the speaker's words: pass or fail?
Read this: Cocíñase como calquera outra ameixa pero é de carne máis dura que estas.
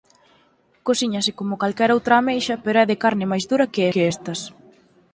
fail